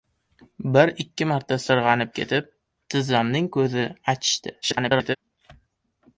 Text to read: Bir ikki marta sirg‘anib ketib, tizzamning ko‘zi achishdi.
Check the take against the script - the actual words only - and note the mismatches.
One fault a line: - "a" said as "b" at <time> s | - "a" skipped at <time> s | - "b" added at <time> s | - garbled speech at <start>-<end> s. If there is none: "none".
- garbled speech at 4.6-5.2 s